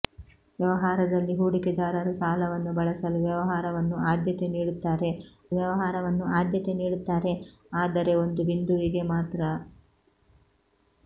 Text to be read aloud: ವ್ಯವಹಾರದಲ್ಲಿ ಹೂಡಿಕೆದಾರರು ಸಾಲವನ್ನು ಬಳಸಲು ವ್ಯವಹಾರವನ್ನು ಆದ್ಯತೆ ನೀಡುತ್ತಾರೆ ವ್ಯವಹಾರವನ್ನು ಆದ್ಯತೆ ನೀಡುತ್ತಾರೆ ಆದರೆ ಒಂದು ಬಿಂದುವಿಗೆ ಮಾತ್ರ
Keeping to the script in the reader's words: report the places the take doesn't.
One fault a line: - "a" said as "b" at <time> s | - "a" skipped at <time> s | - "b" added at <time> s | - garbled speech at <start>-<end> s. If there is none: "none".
none